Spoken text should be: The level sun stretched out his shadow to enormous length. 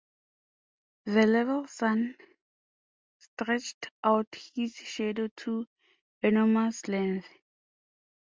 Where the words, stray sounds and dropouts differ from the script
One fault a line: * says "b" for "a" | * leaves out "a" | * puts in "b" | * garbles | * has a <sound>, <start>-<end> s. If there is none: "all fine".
all fine